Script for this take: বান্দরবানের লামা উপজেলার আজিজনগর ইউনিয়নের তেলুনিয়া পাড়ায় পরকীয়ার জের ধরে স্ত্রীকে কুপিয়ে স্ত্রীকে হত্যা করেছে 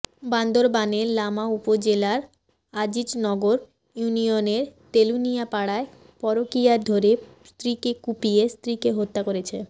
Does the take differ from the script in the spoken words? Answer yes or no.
yes